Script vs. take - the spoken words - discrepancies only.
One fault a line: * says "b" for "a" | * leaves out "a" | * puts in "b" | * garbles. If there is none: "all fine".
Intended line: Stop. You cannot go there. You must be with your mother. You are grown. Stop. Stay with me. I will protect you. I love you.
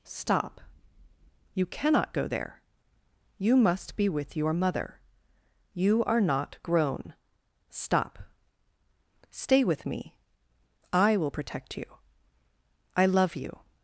* puts in "not"